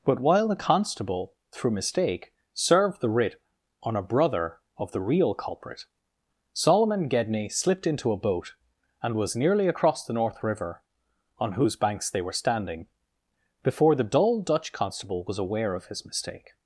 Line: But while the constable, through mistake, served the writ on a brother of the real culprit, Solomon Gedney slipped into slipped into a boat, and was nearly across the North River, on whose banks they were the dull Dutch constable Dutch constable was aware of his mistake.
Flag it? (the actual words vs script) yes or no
yes